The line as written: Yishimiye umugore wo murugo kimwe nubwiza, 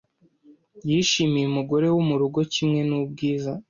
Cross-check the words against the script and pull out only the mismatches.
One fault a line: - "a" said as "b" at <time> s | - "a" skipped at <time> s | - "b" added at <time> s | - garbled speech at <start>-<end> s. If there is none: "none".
none